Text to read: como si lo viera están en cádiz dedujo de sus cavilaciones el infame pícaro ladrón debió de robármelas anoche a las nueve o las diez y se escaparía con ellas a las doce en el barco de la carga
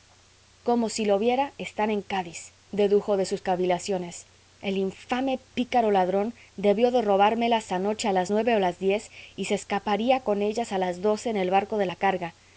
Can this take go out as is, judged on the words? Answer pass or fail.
pass